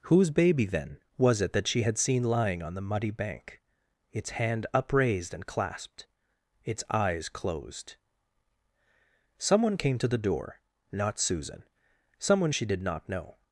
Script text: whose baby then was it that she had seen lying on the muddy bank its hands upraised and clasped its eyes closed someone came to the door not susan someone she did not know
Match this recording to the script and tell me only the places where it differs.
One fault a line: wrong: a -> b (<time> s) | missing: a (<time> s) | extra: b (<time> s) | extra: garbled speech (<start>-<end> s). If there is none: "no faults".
wrong: hands -> hand (4.3 s)